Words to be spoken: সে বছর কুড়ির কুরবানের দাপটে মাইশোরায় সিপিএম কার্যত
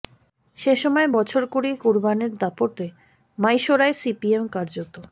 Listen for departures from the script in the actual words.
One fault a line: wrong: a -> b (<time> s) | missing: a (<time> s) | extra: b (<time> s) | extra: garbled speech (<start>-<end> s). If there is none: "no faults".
extra: সময় (0.8 s)